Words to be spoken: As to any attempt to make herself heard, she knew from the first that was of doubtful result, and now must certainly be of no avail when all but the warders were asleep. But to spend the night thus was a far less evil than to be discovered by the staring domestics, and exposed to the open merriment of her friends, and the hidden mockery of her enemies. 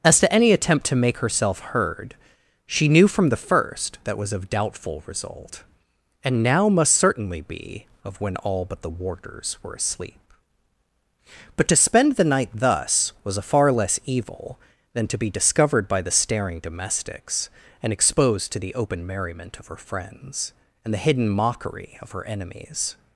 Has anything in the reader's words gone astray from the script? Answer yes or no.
yes